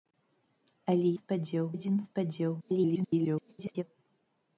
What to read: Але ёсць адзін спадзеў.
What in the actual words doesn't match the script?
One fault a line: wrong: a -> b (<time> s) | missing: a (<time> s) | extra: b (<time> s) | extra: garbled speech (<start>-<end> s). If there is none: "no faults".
wrong: ёсць -> спадзеў (1.2 s)
extra: garbled speech (2.6-3.8 s)